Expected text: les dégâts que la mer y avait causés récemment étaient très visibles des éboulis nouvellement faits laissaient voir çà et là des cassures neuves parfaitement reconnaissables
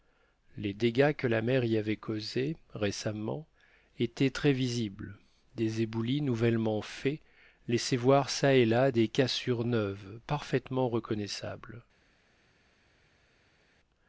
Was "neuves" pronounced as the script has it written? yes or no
yes